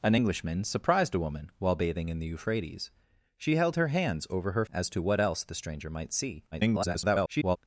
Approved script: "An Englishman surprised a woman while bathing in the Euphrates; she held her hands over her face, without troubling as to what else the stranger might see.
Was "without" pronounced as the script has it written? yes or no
no